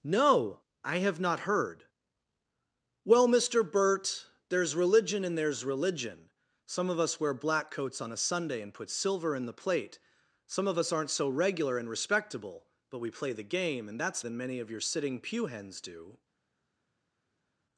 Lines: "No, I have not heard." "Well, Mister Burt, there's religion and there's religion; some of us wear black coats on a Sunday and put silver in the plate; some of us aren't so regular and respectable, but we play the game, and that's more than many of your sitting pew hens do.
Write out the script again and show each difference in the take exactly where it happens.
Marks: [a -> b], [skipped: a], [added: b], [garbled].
"No, I have not heard." "Well, Mister Burt, there's religion and there's religion; some of us wear black coats on a Sunday and put silver in the plate; some of us aren't so regular and respectable, but we play the game, and that's [skipped: more] than many of your sitting pew hens do.